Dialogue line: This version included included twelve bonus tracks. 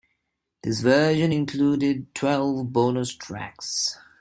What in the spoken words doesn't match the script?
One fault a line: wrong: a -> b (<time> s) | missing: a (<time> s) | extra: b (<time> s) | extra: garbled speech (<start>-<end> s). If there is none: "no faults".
missing: included (2.1 s)